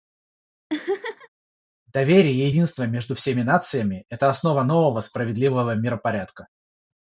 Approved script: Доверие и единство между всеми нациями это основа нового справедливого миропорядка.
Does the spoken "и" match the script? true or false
true